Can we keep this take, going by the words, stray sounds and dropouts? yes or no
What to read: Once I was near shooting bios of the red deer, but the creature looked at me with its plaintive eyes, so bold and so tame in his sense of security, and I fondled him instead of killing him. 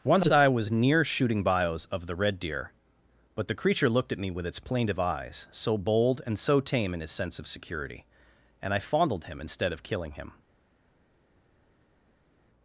yes